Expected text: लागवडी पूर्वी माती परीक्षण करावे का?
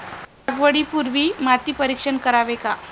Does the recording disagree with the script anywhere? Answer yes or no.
no